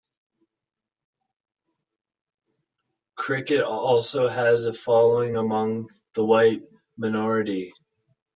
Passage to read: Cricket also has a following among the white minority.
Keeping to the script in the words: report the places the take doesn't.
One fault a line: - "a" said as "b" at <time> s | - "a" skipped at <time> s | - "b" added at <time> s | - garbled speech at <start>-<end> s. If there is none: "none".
none